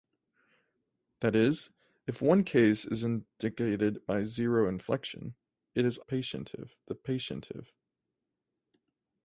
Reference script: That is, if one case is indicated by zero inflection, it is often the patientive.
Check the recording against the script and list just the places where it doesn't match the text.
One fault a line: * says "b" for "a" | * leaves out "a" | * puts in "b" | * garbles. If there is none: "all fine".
* says "patientive" for "often"